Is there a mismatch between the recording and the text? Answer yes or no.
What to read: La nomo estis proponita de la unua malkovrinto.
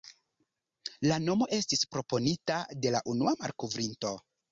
no